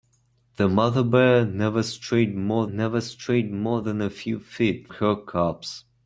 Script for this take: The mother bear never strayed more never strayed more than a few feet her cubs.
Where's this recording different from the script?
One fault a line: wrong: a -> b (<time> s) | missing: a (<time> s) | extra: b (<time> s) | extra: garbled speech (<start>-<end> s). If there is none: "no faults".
no faults